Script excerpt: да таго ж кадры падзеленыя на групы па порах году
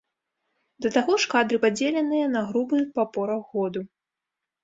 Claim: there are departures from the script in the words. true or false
false